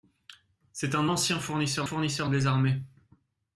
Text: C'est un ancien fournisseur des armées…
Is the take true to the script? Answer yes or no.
no